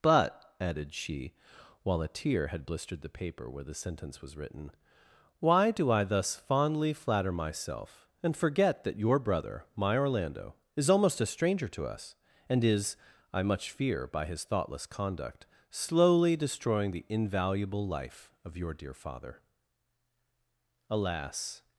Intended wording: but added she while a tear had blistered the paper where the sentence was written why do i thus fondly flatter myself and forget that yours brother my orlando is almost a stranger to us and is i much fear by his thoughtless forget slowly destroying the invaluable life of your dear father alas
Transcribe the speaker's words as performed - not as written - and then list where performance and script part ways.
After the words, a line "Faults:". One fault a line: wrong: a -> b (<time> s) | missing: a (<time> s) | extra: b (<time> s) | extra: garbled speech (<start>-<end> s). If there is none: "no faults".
but added she while a tear had blistered the paper where the sentence was written why do i thus fondly flatter myself and forget that your brother my orlando is almost a stranger to us and is i much fear by his thoughtless conduct slowly destroying the invaluable life of your dear father alas
Faults:
wrong: yours -> your (9.0 s)
wrong: forget -> conduct (14.9 s)